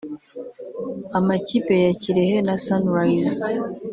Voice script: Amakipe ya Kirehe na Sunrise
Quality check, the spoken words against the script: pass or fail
pass